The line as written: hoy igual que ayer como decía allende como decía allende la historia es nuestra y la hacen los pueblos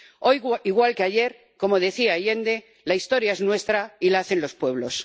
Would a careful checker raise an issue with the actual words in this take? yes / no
yes